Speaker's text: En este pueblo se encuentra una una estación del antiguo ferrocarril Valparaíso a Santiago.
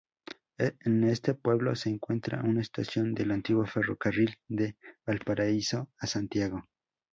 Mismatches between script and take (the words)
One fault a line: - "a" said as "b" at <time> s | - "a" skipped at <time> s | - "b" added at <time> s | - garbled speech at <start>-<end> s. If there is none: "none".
- "una" skipped at 2.6 s
- "de" added at 4.5 s